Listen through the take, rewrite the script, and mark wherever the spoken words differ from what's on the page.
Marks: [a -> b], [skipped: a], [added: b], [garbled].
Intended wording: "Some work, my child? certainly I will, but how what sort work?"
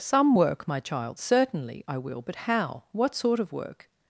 "Some work, my child? certainly I will, but how what sort [added: of] work?"